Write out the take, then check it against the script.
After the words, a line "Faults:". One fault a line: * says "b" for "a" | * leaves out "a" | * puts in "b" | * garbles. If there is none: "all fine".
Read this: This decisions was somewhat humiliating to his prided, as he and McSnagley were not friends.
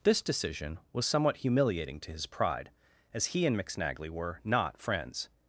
This decision was somewhat humiliating to his pride, as he and McSnagley were not friends.
Faults:
* says "decision" for "decisions"
* says "pride" for "prided"